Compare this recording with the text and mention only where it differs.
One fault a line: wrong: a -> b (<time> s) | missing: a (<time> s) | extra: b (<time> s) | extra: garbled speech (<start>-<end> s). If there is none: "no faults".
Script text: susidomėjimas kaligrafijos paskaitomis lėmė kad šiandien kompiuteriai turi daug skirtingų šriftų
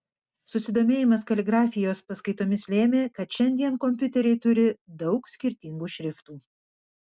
no faults